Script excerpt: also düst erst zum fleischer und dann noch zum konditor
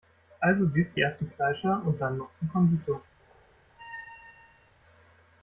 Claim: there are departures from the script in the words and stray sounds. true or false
true